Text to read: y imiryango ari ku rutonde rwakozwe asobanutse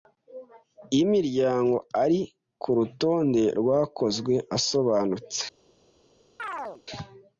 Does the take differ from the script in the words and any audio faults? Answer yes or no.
yes